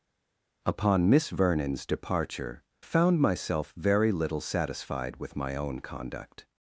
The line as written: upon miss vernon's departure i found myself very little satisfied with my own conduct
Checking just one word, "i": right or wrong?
wrong